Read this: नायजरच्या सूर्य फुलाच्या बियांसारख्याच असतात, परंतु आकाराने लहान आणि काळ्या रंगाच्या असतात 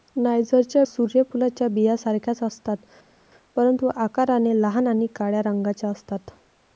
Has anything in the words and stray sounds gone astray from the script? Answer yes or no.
no